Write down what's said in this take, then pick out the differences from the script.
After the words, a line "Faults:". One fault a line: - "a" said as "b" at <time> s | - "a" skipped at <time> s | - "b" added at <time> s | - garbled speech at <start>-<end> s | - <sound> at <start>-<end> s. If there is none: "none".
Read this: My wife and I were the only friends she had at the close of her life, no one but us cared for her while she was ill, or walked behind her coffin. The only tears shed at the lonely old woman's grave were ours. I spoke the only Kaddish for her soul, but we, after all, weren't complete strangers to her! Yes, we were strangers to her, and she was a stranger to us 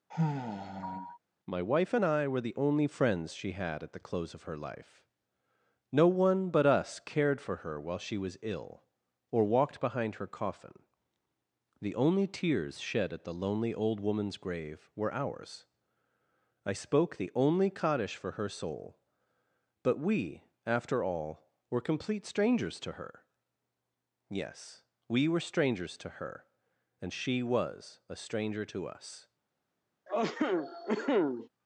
My wife and I were the only friends she had at the close of her life, no one but us cared for her while she was ill, or walked behind her coffin. The only tears shed at the lonely old woman's grave were ours. I spoke the only Kaddish for her soul, but we, after all, were complete strangers to her! Yes, we were strangers to her, and she was a stranger to us
Faults:
- sigh at 0.1-1.2 s
- "weren't" said as "were" at 21.7 s
- cough at 30.1-31.5 s